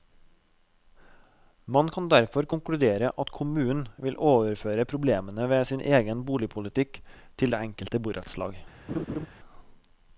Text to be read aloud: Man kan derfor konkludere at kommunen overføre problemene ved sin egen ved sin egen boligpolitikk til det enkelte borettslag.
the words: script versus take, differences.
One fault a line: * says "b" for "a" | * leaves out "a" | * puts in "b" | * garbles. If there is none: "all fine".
* puts in "vil"
* leaves out "ved sin egen"